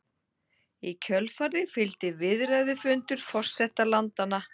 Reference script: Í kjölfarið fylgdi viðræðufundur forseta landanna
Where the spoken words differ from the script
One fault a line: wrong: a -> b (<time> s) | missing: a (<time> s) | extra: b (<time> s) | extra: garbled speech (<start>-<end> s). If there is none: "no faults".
no faults